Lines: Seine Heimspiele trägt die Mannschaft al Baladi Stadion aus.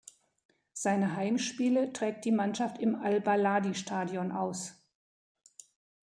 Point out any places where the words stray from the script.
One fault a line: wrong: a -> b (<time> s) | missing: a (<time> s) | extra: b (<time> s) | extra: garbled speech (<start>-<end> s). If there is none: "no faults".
extra: im (2.8 s)